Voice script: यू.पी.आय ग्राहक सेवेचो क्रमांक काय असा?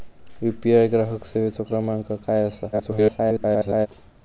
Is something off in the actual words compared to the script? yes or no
yes